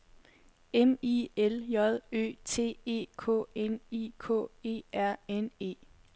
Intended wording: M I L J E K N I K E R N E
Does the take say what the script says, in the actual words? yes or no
no